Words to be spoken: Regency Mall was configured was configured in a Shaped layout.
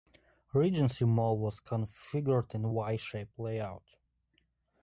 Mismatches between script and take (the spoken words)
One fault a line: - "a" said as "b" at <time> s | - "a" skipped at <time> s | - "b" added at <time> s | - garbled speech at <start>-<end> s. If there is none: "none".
- "was configured" skipped at 2.5 s
- "Y" added at 2.7 s